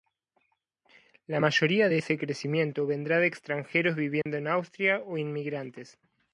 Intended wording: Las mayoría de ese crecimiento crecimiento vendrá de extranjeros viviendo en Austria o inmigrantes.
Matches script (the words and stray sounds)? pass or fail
fail